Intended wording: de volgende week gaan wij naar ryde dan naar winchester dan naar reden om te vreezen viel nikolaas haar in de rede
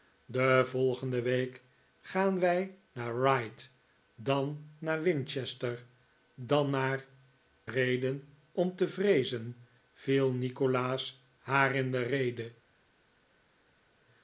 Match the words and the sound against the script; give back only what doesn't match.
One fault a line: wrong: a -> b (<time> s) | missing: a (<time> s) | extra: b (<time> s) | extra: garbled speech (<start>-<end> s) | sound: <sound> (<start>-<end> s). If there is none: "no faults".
no faults